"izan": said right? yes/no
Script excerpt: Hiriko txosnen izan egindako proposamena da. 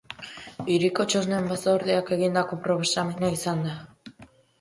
no